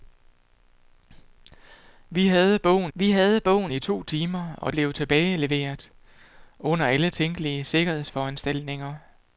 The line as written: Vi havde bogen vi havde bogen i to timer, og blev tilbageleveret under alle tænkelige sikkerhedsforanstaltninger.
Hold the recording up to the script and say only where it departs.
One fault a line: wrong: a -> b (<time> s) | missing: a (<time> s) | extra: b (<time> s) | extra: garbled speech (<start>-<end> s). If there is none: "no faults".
no faults